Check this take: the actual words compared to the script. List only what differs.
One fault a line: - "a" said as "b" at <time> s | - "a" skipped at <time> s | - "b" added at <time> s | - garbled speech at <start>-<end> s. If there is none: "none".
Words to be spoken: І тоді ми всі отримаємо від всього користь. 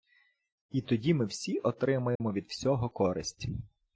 none